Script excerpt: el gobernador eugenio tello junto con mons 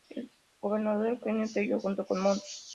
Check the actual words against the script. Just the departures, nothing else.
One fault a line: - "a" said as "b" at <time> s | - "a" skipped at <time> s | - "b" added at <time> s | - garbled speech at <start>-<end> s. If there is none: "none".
none